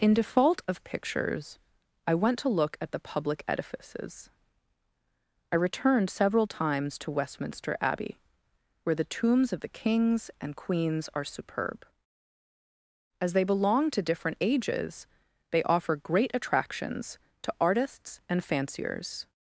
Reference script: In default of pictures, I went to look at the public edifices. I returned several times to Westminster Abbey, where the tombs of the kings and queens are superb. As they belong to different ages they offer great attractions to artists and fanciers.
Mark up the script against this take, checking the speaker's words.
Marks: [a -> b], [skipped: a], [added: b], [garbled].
In default of pictures, I went to look at the public edifices. I returned several times to Westminster Abbey, where the tombs of the kings and queens are superb. As they belong to different ages they offer great attractions to artists and fanciers.